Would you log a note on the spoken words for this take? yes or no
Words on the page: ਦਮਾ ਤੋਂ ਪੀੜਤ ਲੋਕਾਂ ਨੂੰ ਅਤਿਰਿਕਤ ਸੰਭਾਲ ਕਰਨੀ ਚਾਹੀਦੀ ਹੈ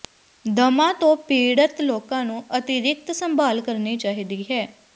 no